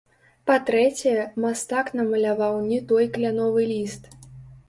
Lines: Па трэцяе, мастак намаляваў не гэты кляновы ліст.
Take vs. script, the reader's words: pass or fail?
fail